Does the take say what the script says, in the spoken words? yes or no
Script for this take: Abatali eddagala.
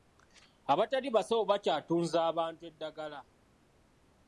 no